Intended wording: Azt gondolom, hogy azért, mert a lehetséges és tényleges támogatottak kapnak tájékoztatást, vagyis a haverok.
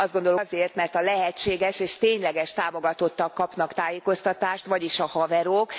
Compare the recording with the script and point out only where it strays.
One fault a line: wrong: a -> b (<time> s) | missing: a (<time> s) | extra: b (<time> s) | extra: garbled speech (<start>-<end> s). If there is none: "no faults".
missing: hogy (0.4 s)